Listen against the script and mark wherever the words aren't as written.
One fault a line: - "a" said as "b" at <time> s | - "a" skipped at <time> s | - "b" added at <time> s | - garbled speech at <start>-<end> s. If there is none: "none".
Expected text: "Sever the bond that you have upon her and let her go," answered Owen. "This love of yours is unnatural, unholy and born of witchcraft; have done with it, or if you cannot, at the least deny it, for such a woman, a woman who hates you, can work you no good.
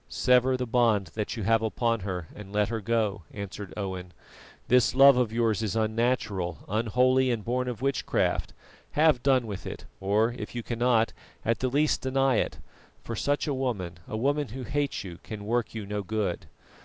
none